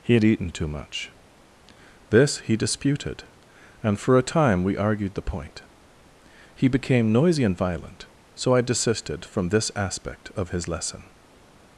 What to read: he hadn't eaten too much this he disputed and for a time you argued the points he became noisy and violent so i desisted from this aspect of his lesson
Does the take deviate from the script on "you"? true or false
true